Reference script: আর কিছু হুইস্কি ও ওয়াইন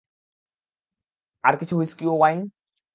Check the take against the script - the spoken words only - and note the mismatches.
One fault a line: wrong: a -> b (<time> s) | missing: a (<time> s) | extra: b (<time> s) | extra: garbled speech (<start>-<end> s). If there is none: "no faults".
no faults